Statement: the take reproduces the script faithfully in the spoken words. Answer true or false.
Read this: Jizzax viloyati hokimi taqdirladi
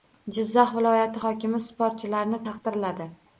false